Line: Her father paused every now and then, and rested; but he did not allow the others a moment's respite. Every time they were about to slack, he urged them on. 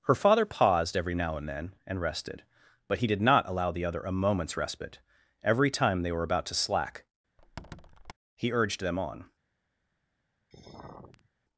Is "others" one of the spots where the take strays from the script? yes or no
yes